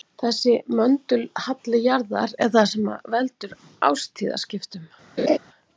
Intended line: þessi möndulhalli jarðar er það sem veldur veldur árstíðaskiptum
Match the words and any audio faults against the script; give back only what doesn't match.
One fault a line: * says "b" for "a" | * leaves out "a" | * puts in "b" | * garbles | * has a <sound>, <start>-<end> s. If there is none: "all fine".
* leaves out "veldur"
* has a laugh, 5.2-5.4 s